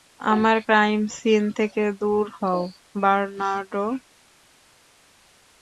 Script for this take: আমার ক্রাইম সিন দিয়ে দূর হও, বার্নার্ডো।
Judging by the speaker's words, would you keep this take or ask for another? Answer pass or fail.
fail